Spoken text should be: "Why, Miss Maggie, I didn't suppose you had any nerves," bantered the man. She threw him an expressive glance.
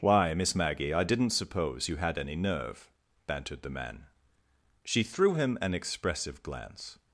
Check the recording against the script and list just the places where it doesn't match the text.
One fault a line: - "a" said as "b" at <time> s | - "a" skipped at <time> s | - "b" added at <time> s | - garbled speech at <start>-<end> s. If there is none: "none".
- "nerves" said as "nerve" at 2.4 s